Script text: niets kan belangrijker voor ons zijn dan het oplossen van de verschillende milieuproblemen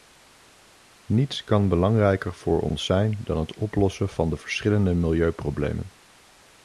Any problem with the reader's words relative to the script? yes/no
no